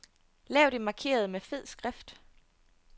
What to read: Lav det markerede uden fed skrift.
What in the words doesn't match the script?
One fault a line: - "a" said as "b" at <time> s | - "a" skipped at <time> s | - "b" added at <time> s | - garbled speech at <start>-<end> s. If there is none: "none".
- "uden" said as "med" at 1.3 s